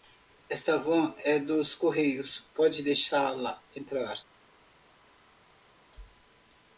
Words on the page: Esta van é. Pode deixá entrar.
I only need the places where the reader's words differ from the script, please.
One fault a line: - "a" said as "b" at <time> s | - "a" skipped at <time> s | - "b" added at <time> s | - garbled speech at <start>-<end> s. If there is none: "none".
- "dos correios" added at 1.4 s
- "la" added at 3.3 s